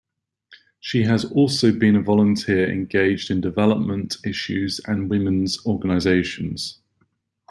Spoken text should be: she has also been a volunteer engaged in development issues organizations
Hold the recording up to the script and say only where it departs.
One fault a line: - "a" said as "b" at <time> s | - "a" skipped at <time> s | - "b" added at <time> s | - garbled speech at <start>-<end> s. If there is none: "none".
- "and women's" added at 4.8 s